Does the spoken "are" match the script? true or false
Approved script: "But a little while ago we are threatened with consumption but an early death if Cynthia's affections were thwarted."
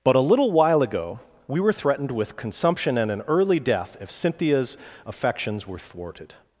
false